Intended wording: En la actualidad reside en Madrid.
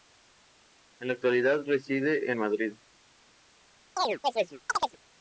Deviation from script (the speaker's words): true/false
false